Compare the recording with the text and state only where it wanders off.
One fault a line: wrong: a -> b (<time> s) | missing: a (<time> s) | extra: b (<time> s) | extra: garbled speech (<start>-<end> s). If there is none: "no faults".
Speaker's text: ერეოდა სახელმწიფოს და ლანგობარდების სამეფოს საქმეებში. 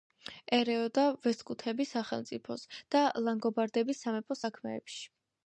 extra: ვესტგუთების (1.2 s)